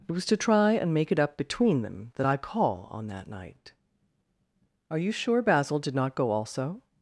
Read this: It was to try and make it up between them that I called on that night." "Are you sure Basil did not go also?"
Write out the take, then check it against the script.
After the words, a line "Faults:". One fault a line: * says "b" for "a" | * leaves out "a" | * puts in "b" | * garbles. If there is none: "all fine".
It was to try and make it up between them that I call on that night." "Are you sure Basil did not go also?"
Faults:
* says "call" for "called"